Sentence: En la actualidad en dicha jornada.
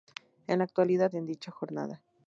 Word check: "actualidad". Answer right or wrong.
right